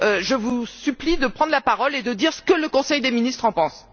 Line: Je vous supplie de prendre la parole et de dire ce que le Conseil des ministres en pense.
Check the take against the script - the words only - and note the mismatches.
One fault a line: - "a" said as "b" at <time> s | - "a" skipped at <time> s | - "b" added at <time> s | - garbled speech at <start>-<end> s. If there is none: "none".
none